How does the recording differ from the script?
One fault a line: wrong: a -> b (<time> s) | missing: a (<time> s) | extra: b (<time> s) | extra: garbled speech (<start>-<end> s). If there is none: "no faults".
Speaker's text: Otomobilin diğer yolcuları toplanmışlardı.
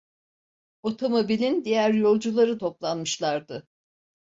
no faults